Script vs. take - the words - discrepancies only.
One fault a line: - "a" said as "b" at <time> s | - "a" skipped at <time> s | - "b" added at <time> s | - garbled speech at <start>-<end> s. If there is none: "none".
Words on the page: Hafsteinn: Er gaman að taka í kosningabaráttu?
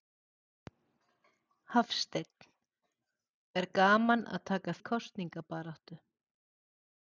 none